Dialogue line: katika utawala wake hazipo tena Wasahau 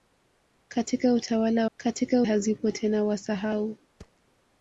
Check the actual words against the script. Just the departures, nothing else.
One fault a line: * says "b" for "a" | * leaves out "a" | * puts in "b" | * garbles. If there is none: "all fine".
* says "katika" for "wake"